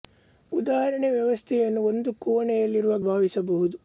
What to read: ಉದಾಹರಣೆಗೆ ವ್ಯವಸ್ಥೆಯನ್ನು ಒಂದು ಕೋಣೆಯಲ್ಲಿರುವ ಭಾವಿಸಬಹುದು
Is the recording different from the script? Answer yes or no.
no